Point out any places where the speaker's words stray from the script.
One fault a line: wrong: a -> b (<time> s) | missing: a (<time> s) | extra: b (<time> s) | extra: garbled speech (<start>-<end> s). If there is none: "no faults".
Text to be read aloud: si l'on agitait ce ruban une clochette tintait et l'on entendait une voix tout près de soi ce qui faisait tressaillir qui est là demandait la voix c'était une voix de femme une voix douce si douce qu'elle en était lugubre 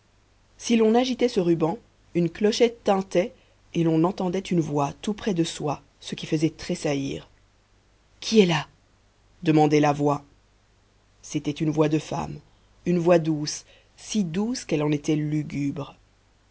no faults